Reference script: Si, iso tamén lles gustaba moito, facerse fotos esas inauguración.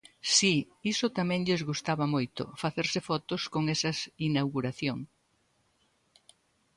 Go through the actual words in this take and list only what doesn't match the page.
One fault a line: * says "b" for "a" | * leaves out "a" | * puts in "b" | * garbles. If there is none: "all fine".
* puts in "con"